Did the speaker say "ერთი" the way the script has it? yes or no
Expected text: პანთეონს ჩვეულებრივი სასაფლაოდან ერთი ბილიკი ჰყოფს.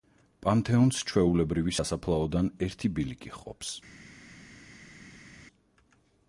yes